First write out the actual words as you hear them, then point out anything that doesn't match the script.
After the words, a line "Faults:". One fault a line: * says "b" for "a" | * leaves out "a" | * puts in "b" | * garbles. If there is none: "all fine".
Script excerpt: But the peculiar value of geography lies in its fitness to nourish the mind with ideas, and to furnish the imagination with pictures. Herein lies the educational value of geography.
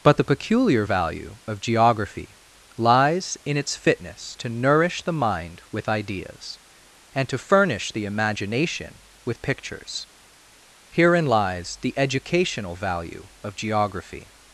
But the peculiar value of geography lies in its fitness to nourish the mind with ideas, and to furnish the imagination with pictures. Herein lies the educational value of geography.
Faults:
all fine